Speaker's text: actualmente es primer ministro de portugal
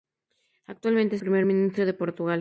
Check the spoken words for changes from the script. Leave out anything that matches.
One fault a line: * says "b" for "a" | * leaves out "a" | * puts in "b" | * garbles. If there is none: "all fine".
all fine